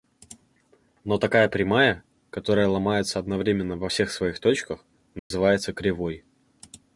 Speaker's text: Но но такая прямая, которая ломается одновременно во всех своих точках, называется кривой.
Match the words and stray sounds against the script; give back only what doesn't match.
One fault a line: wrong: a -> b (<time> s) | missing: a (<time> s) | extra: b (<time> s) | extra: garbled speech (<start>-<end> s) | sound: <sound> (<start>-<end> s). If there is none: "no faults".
missing: но (1.2 s)
sound: dropout (5.2-5.3 s)